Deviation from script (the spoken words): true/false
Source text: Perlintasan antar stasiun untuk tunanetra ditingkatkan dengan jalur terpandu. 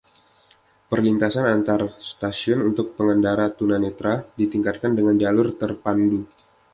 true